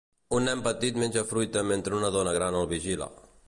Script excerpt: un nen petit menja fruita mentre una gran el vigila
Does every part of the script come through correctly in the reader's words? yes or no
no